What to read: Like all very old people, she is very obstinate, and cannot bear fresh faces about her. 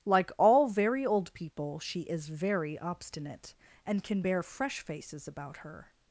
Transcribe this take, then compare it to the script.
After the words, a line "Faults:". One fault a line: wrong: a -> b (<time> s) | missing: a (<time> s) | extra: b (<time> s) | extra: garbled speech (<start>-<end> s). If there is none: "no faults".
Like all very old people, she is very obstinate, and can bear fresh faces about her.
Faults:
wrong: cannot -> can (4.0 s)